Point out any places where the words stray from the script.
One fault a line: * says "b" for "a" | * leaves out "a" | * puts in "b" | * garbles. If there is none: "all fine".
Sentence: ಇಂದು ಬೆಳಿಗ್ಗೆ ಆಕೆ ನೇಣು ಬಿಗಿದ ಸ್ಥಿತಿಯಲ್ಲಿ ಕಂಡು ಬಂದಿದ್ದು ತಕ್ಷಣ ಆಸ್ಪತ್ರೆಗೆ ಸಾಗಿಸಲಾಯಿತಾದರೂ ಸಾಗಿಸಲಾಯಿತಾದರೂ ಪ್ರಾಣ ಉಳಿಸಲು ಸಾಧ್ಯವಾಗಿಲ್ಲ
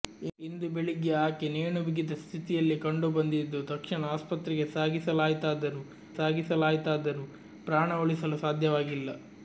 all fine